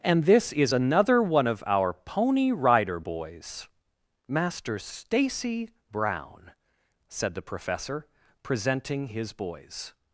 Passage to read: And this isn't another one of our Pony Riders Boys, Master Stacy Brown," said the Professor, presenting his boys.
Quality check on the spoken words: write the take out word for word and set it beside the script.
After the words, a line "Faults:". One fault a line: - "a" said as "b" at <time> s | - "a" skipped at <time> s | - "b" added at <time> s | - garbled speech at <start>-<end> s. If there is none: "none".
And this is another one of our Pony Rider Boys, Master Stacy Brown," said the Professor, presenting his boys.
Faults:
- "isn't" said as "is" at 0.5 s
- "Riders" said as "Rider" at 2.5 s